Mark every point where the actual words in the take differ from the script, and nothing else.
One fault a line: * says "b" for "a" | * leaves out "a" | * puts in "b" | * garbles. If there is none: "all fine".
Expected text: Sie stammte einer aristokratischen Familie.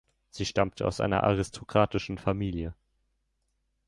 * puts in "aus"